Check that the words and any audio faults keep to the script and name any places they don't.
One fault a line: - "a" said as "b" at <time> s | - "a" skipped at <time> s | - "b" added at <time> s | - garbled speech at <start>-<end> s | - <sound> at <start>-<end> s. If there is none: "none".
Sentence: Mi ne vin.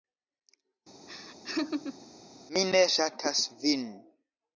- laugh at 1.1-2.1 s
- "ŝatas" added at 2.9 s